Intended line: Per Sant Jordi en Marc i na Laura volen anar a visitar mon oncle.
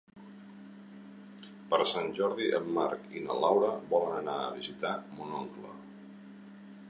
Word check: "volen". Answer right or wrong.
right